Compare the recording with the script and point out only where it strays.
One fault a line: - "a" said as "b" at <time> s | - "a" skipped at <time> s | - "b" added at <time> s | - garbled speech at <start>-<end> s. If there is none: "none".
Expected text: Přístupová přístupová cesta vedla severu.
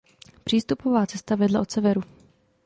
- "přístupová" skipped at 1.1 s
- "od" added at 1.6 s